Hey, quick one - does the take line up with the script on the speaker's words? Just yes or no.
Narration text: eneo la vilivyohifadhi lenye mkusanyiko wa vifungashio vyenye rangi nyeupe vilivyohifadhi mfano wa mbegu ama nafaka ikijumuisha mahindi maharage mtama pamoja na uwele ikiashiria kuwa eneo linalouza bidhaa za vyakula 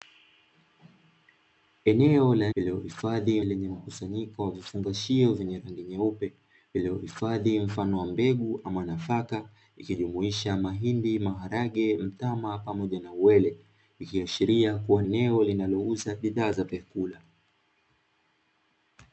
yes